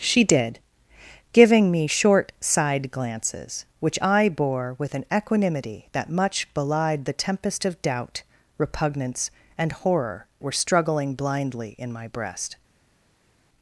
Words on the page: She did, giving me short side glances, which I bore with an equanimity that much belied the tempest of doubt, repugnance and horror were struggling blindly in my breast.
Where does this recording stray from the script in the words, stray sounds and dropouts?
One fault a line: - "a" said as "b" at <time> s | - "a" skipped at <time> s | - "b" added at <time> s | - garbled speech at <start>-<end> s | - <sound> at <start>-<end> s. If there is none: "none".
none